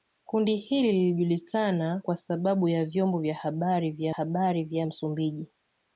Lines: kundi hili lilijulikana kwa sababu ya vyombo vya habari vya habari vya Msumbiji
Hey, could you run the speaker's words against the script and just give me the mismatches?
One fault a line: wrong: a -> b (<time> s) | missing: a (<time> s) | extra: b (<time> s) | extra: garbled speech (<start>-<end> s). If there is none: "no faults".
no faults